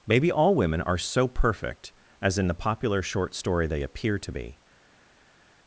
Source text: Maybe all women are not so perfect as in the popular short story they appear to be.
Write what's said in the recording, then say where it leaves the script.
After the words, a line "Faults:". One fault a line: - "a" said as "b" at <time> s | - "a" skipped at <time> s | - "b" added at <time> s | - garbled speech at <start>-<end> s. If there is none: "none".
Maybe all women are so perfect as in the popular short story they appear to be.
Faults:
- "not" skipped at 1.0 s